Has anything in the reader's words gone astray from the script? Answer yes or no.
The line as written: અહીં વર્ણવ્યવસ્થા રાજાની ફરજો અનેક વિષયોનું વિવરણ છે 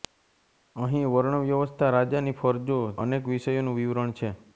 no